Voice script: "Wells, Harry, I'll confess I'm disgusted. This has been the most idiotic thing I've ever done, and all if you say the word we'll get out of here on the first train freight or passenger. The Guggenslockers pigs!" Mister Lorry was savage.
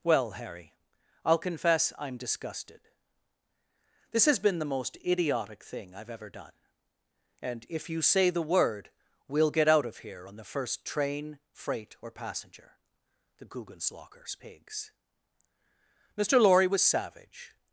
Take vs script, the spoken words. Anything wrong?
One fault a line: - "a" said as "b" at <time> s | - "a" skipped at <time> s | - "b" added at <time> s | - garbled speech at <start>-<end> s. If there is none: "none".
- "Wells" said as "Well" at 0.0 s
- "all" skipped at 7.7 s